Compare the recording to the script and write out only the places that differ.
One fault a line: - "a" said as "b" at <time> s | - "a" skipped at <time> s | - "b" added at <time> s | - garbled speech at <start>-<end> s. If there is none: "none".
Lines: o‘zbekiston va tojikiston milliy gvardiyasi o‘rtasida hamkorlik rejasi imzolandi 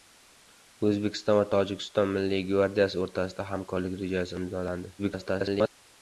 - garbled speech at 5.0-5.7 s